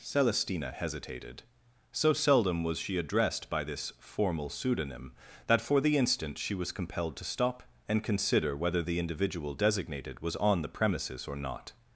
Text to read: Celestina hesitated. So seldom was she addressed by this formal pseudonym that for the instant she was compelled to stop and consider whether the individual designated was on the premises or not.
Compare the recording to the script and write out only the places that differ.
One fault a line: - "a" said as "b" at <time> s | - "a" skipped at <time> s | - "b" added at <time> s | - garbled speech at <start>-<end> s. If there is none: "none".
none